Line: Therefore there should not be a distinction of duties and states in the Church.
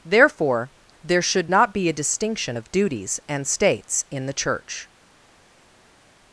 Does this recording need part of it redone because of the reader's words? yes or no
no